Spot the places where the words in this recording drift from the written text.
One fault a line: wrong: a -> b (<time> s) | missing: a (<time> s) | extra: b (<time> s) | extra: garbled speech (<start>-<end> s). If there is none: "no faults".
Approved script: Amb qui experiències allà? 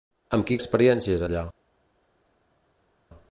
no faults